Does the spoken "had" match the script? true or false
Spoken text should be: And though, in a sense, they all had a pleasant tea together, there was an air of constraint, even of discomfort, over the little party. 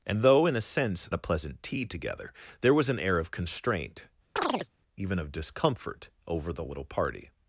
false